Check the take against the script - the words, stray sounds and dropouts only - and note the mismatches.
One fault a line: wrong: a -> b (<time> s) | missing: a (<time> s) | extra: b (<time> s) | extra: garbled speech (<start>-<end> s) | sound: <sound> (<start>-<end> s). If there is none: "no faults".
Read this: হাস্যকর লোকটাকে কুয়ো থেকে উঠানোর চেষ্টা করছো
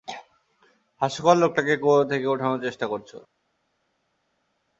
no faults